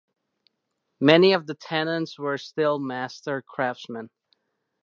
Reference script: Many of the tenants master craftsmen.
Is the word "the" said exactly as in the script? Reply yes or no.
yes